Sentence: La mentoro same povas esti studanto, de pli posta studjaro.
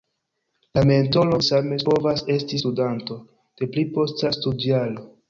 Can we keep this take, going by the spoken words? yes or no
yes